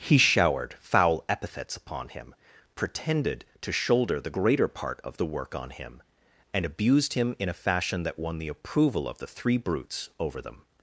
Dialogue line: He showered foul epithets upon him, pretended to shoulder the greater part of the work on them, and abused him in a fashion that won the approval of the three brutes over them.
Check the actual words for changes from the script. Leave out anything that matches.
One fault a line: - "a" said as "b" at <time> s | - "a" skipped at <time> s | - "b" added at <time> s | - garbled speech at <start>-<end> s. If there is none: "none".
- "them" said as "him" at 5.7 s